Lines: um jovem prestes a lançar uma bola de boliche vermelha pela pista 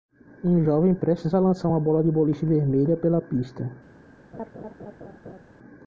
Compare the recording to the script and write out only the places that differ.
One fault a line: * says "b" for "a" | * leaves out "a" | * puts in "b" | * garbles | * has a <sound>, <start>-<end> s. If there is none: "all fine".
* has a laugh, 4.3-5.5 s